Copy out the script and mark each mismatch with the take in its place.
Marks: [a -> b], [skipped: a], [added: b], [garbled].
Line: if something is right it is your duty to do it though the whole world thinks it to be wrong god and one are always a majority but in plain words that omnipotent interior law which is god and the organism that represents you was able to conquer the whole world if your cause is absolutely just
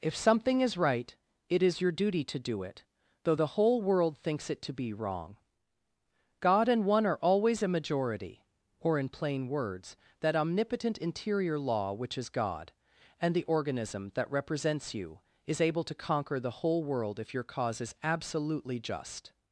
if something is right it is your duty to do it though the whole world thinks it to be wrong god and one are always a majority [but -> or] in plain words that omnipotent interior law which is god and the organism that represents you [was -> is] able to conquer the whole world if your cause is absolutely just